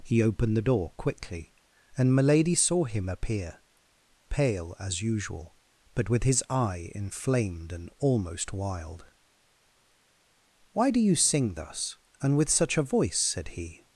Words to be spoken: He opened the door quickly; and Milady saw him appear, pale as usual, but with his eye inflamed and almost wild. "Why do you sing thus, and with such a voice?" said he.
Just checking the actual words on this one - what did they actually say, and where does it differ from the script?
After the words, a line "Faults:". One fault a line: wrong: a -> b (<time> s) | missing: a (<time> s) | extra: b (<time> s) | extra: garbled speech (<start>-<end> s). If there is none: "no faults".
He opened the door quickly; and Milady saw him appear, pale as usual, but with his eye inflamed and almost wild. "Why do you sing thus, and with such a voice?" said he.
Faults:
no faults